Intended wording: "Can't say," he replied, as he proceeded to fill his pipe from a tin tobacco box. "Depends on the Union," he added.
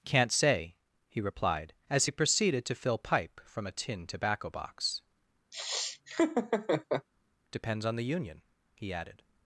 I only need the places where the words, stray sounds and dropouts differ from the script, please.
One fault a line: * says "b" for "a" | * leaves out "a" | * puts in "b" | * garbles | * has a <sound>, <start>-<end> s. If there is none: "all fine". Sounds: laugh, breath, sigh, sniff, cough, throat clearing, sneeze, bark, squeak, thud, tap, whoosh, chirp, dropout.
* leaves out "his"
* has a laugh, 5.5-7.1 s